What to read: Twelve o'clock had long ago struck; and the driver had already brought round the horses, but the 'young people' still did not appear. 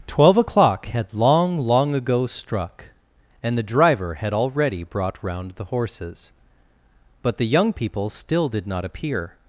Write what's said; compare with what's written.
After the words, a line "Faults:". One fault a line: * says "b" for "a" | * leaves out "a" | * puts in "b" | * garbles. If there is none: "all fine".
Twelve o'clock had long long ago struck; and the driver had already brought round the horses, but the 'young people' still did not appear.
Faults:
* puts in "long"